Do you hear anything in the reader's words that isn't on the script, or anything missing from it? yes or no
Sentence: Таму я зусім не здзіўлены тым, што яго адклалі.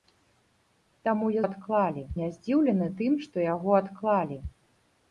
yes